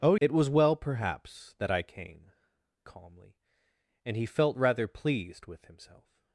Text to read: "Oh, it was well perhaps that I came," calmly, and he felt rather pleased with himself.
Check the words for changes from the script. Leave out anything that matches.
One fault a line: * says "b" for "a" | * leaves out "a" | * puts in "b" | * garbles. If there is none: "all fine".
all fine